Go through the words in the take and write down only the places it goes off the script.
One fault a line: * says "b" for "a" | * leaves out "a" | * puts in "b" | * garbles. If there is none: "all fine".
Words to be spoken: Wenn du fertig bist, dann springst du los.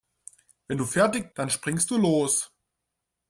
* leaves out "bist"